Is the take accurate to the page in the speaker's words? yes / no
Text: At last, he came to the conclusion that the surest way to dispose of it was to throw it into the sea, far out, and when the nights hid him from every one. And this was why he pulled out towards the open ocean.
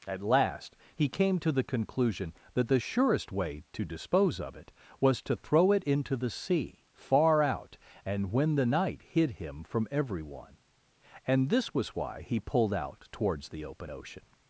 no